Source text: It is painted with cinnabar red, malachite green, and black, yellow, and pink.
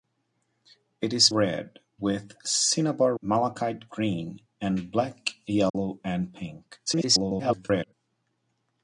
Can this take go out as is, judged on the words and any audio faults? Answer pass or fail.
fail